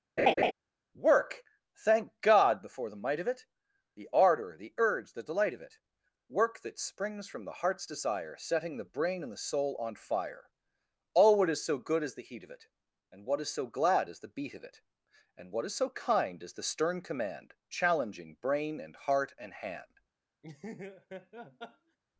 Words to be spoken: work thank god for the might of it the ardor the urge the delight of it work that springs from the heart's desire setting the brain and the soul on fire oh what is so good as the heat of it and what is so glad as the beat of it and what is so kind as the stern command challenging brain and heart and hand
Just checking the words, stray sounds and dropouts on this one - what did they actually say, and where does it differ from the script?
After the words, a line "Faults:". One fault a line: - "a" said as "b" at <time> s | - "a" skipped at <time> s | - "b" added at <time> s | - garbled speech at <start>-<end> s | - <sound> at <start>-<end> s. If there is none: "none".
work thank god before the might of it the ardor the urge the delight of it work that springs from the heart's desire setting the brain and the soul on fire oh what is so good as the heat of it and what is so glad as the beat of it and what is so kind as the stern command challenging brain and heart and hand
Faults:
- laugh at 0.2-0.5 s
- "for" said as "before" at 2.6 s
- laugh at 20.4-22.0 s